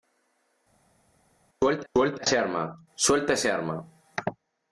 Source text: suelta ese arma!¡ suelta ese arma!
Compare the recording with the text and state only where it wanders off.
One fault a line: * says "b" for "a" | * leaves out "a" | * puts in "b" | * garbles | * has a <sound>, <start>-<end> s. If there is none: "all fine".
* puts in "suelta"